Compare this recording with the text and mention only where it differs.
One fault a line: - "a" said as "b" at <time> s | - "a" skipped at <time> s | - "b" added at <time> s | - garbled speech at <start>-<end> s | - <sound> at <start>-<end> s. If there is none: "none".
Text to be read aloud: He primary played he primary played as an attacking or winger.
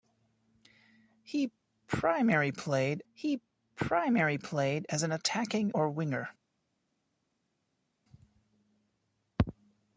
none